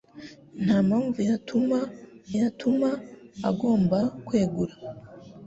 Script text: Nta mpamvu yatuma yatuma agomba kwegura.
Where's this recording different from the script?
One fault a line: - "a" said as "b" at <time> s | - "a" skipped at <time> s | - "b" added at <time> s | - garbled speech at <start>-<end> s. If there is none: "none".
none